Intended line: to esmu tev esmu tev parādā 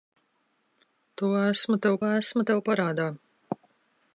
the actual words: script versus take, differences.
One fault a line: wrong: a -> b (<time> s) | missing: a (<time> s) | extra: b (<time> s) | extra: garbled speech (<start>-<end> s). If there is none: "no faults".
no faults